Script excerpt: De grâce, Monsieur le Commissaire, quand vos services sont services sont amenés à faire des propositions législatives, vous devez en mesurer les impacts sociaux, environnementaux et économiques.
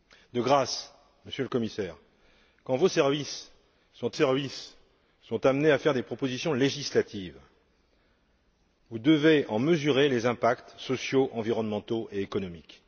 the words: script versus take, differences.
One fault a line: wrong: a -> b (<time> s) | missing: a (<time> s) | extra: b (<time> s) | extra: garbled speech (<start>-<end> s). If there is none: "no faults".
no faults